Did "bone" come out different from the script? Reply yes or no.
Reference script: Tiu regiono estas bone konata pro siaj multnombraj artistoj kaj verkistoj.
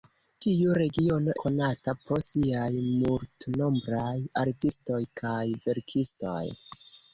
yes